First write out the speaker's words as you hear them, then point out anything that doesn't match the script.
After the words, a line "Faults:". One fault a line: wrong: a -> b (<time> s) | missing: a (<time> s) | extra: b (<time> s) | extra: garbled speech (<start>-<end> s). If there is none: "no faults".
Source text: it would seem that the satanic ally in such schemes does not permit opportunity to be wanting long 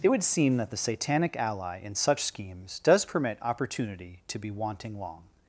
it would seem that the satanic ally in such schemes does permit opportunity to be wanting long
Faults:
missing: not (3.0 s)